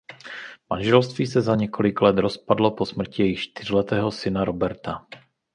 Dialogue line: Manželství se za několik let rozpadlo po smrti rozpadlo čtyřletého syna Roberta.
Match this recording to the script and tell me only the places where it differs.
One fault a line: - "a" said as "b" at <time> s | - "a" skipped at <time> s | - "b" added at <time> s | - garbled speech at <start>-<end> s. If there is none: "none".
- "rozpadlo" said as "jejich" at 3.2 s